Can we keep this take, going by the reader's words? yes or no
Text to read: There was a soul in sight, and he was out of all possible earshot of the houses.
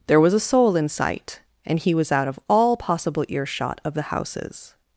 yes